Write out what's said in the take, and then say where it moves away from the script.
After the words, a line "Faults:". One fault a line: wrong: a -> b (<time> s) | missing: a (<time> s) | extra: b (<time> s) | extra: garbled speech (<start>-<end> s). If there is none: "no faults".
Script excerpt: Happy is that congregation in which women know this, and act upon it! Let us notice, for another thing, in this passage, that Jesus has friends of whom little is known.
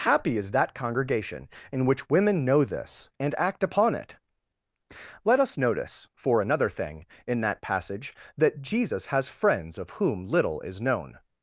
Happy is that congregation in which women know this, and act upon it! Let us notice, for another thing, in that passage, that Jesus has friends of whom little is known.
Faults:
wrong: this -> that (7.4 s)